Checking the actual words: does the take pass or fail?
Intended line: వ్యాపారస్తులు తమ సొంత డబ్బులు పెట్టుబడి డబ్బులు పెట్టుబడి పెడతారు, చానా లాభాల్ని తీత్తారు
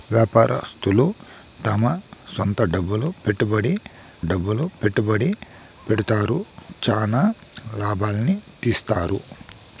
pass